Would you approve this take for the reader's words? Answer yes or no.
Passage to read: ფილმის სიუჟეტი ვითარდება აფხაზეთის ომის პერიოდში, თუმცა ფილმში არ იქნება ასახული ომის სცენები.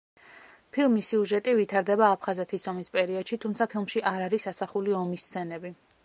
no